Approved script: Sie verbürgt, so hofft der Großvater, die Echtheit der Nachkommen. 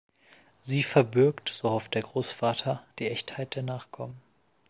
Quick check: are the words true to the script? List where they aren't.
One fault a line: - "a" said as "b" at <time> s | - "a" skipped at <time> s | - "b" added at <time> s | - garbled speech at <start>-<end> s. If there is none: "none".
none